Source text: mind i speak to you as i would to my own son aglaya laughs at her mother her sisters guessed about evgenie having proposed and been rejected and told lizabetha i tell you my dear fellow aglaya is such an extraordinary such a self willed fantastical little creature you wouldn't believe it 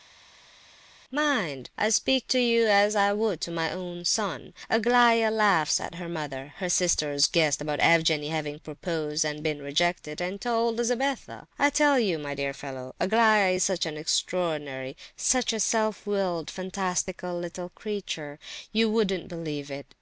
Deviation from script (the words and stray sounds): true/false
false